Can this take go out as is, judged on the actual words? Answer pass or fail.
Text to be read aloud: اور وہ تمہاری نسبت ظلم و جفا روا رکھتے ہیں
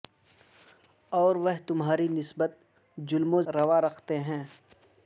fail